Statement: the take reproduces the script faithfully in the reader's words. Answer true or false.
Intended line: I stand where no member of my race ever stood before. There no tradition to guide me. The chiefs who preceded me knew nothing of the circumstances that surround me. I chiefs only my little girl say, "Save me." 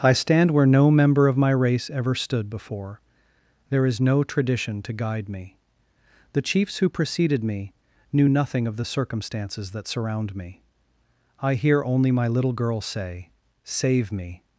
false